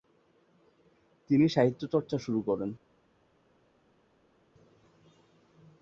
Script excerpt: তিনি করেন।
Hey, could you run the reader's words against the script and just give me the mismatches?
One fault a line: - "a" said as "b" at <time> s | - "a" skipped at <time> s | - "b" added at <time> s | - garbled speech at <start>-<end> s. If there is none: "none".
- "সাহিত্যচর্চা শুরু" added at 1.5 s